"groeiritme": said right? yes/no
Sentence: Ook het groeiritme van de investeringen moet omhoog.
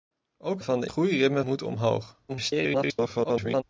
no